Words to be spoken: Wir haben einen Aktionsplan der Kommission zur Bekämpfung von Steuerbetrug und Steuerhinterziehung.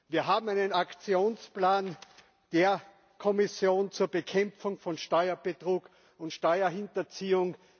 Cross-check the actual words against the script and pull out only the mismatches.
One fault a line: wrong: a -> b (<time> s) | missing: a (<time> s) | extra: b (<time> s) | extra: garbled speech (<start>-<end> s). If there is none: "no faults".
no faults